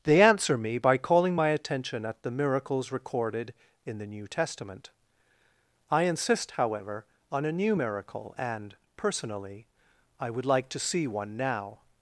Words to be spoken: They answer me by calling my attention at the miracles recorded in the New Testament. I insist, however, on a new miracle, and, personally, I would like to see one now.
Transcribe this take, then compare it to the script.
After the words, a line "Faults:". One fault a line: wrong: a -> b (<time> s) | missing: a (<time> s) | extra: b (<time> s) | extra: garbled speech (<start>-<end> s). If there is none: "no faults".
They answer me by calling my attention at the miracles recorded in the New Testament. I insist, however, on a new miracle, and, personally, I would like to see one now.
Faults:
no faults